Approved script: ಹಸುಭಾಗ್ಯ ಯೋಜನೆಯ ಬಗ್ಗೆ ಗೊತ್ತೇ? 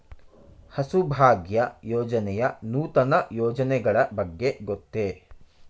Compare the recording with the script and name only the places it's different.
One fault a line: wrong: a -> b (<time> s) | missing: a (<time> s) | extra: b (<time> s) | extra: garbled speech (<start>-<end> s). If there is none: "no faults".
extra: ನೂತನ ಯೋಜನೆಗಳ (2.6 s)